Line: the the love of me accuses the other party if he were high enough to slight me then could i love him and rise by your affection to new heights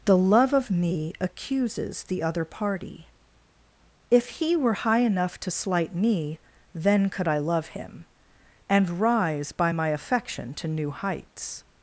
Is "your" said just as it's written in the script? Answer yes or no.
no